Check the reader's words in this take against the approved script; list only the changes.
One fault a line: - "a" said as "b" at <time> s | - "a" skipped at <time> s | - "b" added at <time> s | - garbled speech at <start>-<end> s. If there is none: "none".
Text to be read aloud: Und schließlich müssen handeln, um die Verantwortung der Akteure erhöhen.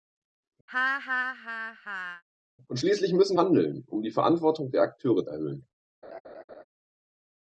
none